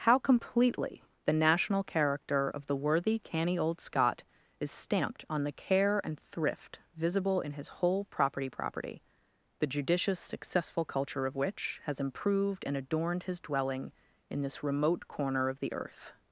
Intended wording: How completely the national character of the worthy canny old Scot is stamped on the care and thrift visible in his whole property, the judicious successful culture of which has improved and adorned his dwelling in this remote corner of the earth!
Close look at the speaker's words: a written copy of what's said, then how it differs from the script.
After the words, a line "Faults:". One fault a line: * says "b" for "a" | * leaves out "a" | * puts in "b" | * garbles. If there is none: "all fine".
How completely the national character of the worthy canny old Scot is stamped on the care and thrift visible in his whole property property, the judicious successful culture of which has improved and adorned his dwelling in this remote corner of the earth!
Faults:
* puts in "property"